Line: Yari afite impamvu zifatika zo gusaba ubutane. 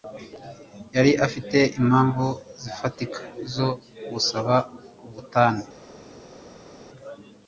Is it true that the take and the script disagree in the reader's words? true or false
false